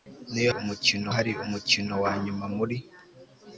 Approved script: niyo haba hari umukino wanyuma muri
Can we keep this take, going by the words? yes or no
no